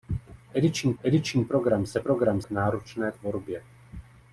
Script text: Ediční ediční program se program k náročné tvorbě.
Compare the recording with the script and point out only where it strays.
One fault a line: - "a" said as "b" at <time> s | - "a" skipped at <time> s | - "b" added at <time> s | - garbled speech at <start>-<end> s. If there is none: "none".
none